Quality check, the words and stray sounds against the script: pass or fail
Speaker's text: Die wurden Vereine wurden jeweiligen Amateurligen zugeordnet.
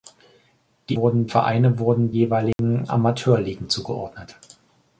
fail